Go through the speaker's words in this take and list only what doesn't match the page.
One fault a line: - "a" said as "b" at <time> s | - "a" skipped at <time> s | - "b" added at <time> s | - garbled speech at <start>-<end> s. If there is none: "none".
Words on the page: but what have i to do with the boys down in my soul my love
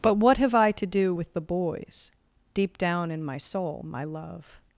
- "deep" added at 2.5 s